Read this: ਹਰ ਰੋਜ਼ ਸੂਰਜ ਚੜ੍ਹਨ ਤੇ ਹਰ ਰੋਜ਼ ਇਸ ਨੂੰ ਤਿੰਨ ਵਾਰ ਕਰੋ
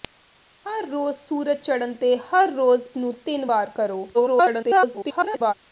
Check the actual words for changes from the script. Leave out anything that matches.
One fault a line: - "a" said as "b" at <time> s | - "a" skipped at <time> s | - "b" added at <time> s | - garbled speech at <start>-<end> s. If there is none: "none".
- "ਇਸ" skipped at 2.9 s
- garbled speech at 4.1-5.5 s